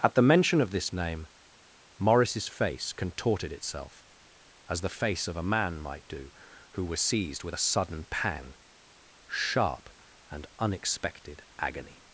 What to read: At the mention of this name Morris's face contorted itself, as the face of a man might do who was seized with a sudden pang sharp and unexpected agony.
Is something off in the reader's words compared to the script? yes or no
no